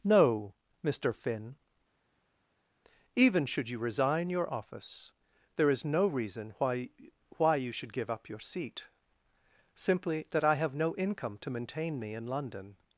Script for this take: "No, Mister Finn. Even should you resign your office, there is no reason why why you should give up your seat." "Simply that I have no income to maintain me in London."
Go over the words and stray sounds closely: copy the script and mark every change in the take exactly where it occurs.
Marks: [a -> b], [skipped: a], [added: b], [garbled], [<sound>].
"No, Mister Finn. Even should you resign your office, there is no reason why why you should give up your seat." "Simply that I have no income to maintain me in London."